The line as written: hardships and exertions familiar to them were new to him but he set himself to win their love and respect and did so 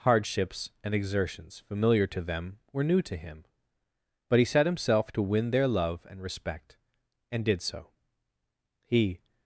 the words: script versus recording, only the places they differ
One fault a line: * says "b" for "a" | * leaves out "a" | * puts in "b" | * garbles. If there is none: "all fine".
* puts in "he"